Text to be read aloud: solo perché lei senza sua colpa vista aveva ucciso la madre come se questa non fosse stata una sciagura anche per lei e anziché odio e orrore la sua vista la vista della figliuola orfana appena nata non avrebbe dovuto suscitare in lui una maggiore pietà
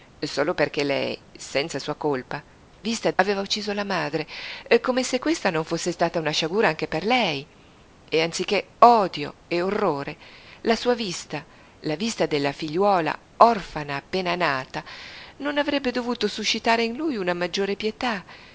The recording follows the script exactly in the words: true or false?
true